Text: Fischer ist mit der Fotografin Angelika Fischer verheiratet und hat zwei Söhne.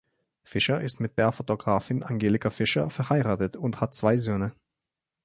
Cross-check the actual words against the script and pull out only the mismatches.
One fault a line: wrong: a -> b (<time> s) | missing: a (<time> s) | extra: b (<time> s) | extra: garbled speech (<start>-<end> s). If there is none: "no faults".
no faults